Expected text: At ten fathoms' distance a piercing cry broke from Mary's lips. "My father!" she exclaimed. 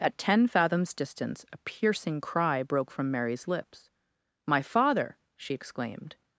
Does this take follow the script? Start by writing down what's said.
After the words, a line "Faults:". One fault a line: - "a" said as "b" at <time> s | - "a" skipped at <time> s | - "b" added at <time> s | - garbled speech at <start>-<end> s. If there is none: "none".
At ten fathoms' distance a piercing cry broke from Mary's lips. "My father!" she exclaimed.
Faults:
none